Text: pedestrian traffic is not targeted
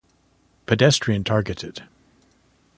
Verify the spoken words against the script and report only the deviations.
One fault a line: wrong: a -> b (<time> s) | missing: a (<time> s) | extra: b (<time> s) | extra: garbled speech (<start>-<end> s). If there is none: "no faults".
missing: traffic is not (1.2 s)